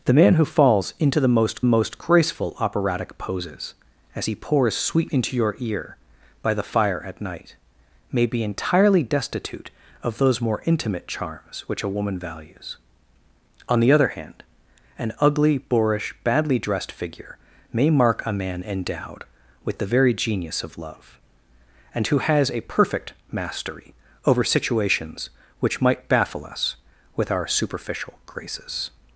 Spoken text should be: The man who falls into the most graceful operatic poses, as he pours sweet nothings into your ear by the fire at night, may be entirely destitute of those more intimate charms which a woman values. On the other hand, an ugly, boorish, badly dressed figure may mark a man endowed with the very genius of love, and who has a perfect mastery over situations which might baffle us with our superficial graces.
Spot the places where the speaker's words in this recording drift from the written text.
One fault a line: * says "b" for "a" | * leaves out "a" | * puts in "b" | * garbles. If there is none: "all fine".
* puts in "most"
* leaves out "nothings"